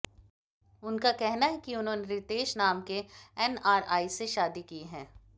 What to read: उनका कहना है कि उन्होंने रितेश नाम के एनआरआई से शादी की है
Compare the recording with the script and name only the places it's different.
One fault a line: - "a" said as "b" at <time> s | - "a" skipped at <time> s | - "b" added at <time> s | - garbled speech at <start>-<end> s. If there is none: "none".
none